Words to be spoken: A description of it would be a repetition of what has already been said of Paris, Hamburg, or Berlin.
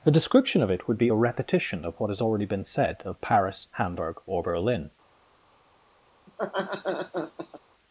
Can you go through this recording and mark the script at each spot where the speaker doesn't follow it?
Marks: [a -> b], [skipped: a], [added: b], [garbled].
A description of it would be a repetition of what has already been said of Paris, Hamburg, or Berlin.